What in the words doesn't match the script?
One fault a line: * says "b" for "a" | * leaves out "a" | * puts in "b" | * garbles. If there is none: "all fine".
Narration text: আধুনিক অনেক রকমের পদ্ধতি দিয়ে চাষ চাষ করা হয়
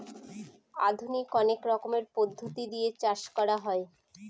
* leaves out "চাষ"